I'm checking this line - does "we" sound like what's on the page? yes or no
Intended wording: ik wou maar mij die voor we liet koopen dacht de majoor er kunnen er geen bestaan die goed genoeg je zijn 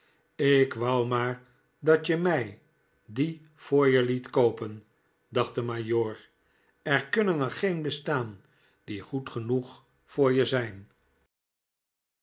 no